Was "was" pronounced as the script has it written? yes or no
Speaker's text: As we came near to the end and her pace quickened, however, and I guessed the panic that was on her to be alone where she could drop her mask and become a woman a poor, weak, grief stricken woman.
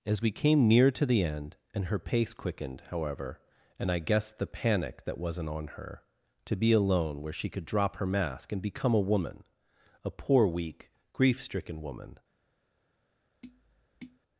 no